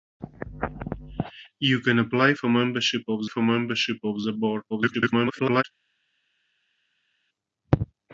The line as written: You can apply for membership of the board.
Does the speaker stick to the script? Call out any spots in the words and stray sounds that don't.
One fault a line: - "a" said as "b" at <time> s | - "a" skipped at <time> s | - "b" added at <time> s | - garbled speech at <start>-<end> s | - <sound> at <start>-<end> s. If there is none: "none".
- "for membership of" added at 3.2 s
- garbled speech at 4.7-5.6 s